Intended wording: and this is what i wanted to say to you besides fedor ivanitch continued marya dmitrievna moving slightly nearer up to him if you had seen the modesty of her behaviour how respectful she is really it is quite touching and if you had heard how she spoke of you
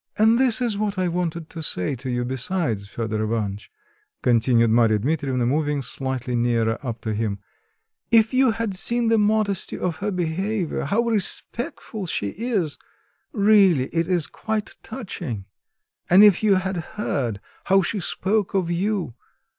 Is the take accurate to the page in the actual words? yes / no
yes